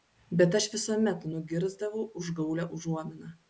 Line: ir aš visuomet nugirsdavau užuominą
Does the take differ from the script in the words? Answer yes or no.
yes